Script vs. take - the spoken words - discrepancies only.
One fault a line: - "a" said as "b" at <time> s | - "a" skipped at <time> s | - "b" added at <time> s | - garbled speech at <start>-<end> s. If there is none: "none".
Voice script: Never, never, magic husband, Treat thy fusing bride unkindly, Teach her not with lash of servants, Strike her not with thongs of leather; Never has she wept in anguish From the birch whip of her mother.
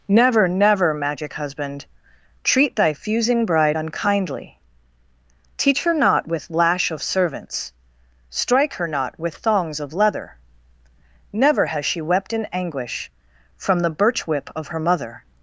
none